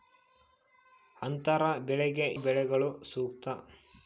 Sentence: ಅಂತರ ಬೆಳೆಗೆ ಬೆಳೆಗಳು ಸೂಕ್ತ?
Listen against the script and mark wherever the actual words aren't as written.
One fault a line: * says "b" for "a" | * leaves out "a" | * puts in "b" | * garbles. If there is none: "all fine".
all fine